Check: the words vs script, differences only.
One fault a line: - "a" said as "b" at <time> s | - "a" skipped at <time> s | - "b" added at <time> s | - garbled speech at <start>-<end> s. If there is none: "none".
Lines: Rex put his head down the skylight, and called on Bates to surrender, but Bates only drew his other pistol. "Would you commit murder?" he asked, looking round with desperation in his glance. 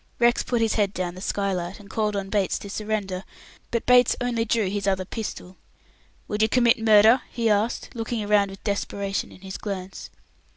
none